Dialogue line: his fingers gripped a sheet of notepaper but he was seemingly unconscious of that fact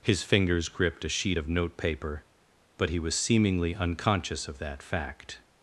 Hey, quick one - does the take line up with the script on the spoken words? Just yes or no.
yes